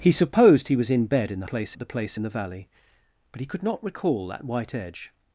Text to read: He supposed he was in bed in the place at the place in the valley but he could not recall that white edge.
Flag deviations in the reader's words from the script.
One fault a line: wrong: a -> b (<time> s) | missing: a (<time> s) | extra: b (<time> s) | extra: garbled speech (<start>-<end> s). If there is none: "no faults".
no faults